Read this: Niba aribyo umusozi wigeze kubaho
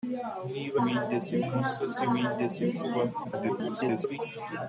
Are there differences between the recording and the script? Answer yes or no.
yes